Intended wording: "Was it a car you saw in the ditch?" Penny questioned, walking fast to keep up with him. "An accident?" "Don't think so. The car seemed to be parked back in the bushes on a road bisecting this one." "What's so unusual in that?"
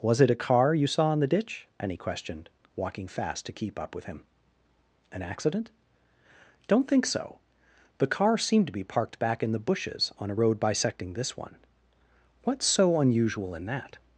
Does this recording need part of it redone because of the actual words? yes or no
yes